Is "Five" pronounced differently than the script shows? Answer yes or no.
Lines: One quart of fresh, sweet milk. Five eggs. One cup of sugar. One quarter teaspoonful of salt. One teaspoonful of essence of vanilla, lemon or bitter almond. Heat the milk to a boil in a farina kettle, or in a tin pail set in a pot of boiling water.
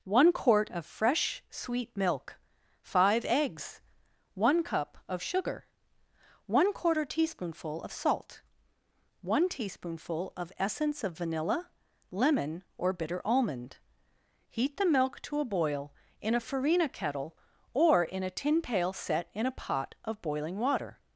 no